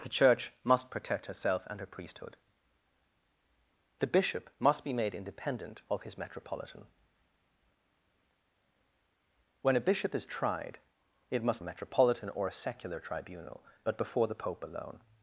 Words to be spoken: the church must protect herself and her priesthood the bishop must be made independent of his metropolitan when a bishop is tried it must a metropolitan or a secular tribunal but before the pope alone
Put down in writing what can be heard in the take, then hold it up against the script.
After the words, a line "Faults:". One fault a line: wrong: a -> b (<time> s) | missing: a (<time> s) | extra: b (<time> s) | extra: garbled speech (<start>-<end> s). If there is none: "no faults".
the church must protect herself and her priesthood the bishop must be made independent of his metropolitan when a bishop is tried it must a metropolitan or a secular tribunal but before the pope alone
Faults:
no faults